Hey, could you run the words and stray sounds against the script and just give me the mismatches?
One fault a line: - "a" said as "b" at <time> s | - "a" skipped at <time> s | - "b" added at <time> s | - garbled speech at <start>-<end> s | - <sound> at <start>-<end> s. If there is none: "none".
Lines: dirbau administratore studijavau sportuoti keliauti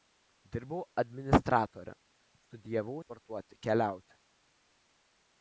none